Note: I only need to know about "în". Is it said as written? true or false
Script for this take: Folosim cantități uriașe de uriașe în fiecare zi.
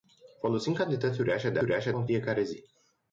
true